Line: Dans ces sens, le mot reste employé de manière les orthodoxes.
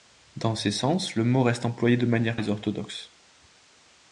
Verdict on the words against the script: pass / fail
pass